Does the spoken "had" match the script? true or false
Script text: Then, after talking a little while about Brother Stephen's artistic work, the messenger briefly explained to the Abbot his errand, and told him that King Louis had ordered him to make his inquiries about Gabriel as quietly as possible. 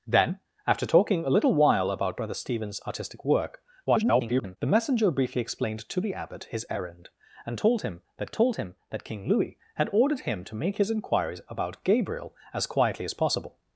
true